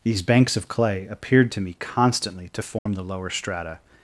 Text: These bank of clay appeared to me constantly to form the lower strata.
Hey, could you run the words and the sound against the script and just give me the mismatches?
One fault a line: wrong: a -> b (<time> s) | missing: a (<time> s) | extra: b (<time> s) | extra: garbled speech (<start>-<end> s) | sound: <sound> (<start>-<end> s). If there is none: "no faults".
wrong: bank -> banks (0.2 s)
sound: dropout (2.8-2.9 s)